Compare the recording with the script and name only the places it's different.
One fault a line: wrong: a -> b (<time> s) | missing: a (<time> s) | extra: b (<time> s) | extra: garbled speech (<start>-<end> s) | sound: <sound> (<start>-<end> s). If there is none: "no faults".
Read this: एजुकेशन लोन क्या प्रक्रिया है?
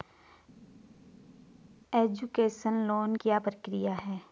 no faults